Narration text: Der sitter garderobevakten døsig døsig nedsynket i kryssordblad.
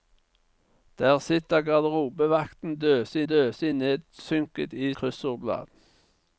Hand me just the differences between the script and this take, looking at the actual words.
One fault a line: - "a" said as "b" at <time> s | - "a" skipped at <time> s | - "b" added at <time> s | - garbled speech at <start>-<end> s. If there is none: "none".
none